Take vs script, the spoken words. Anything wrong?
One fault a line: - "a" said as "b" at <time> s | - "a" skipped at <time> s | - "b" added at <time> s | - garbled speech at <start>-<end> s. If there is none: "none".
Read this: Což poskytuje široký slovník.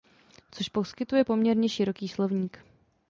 - "poměrně" added at 1.2 s